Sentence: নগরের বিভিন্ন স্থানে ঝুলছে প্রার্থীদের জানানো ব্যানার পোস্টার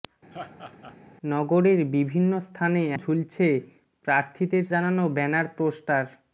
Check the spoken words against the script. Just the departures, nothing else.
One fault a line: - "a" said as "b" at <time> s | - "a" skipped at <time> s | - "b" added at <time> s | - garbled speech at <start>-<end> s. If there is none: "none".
none